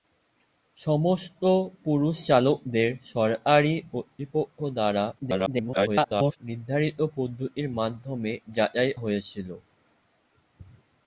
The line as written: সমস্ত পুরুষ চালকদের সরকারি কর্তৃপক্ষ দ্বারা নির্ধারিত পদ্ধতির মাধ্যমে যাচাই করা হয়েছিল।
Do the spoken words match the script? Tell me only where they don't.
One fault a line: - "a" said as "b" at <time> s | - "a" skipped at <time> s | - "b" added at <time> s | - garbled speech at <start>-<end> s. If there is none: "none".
- garbled speech at 5.2-6.4 s
- "করা" skipped at 8.9 s